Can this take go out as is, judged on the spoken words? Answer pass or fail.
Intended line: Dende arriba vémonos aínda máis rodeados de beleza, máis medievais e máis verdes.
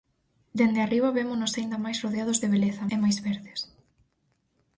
fail